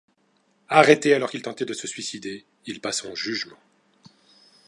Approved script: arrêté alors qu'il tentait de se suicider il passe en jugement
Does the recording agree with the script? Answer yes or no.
yes